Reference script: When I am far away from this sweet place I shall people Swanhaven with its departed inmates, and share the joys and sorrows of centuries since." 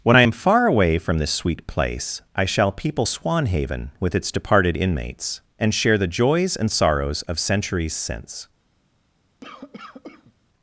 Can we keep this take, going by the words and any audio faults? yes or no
no